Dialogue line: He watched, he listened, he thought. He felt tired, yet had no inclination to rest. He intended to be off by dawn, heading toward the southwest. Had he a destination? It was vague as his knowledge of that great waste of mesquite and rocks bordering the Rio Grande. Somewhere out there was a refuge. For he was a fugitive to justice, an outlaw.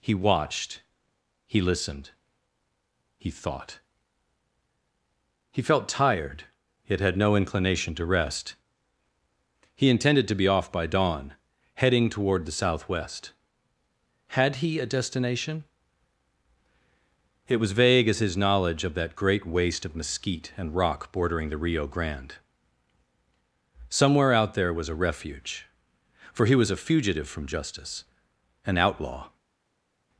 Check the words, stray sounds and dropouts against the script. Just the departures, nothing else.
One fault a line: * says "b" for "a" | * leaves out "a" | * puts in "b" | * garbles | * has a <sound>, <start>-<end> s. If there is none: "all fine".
* says "rock" for "rocks"
* says "from" for "to"